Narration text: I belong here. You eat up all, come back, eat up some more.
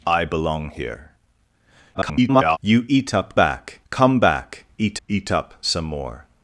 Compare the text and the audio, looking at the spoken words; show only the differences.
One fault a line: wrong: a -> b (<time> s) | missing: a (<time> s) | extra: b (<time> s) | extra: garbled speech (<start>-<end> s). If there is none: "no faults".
extra: garbled speech (1.9-2.6 s)
wrong: all -> back (3.3 s)
extra: eat (5.1 s)